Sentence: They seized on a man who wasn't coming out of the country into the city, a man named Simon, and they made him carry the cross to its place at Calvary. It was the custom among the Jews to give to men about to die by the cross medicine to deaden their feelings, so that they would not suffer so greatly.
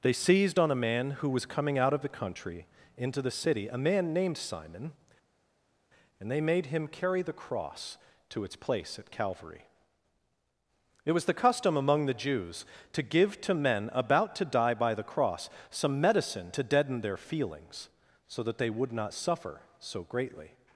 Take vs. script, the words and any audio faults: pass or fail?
fail